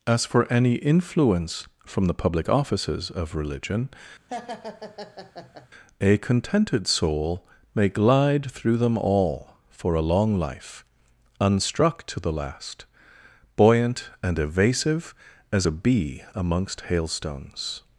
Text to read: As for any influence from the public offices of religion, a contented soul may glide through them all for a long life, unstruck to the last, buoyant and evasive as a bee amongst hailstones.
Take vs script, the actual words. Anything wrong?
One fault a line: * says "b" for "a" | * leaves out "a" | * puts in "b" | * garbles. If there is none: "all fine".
all fine